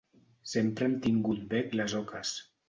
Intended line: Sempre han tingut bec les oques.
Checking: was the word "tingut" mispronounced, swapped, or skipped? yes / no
no